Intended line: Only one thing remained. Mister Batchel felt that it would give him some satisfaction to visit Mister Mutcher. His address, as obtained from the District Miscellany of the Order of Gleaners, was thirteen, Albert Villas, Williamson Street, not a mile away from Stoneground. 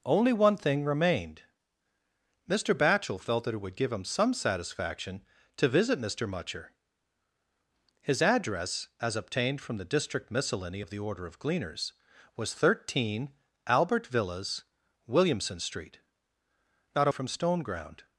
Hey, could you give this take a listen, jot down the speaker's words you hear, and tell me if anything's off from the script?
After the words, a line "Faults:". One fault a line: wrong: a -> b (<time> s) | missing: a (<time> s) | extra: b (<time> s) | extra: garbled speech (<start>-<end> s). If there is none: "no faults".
Only one thing remained. Mister Batchel felt that it would give him some satisfaction to visit Mister Mutcher. His address, as obtained from the District Miscellany of the Order of Gleaners, was thirteen, Albert Villas, Williamson Street, not a from Stoneground.
Faults:
missing: mile away (17.1 s)